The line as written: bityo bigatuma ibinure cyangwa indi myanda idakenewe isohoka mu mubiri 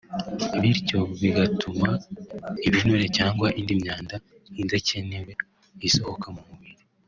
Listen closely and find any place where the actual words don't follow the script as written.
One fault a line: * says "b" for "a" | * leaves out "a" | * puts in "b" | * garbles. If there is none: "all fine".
all fine